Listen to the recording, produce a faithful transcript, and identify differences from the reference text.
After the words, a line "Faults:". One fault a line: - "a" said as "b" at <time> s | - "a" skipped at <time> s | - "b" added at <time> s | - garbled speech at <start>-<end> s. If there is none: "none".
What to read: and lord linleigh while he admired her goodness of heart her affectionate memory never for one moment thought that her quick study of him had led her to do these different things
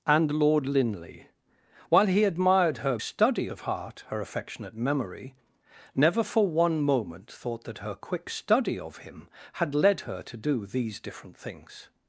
and lord linleigh while he admired her study of heart her affectionate memory never for one moment thought that her quick study of him had led her to do these different things
Faults:
- "goodness" said as "study" at 3.0 s